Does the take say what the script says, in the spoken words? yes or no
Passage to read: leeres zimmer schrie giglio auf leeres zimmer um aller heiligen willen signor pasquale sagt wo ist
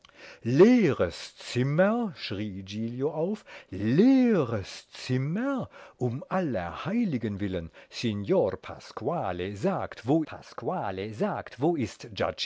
no